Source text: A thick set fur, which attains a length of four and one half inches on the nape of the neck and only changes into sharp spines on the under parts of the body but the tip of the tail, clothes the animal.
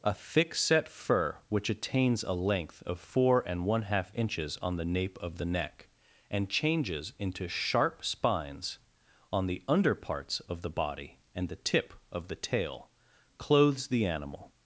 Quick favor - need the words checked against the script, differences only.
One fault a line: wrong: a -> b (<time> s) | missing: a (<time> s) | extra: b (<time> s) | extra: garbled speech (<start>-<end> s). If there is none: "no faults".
missing: only (6.5 s)
wrong: but -> and (11.3 s)